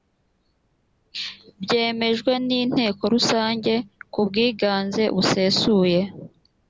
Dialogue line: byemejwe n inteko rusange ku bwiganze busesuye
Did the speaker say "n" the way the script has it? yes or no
yes